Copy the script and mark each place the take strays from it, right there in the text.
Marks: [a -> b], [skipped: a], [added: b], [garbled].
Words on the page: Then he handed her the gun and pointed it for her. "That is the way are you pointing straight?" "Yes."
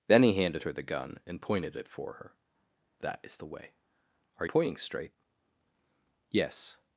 Then he handed her the gun and pointed it for her. "That is the way are [skipped: you] pointing straight?" "Yes."